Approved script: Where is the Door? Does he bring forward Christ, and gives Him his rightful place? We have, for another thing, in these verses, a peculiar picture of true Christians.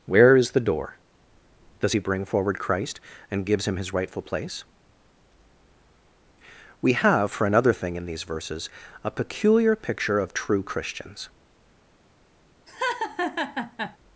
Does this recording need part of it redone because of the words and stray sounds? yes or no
yes